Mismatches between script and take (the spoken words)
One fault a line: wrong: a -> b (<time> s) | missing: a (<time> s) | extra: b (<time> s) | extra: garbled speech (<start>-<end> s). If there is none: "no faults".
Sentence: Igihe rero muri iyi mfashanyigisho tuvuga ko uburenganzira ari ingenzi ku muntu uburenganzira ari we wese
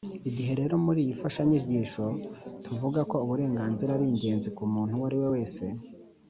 wrong: uburenganzira -> uwo (5.0 s)